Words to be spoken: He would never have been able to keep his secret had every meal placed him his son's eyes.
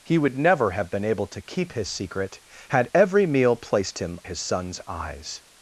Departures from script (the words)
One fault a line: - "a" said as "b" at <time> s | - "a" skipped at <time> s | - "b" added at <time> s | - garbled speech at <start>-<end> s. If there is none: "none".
none